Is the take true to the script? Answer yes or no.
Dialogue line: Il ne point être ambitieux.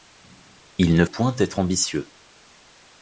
yes